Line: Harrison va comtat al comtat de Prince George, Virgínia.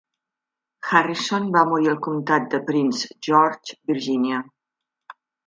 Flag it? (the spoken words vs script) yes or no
yes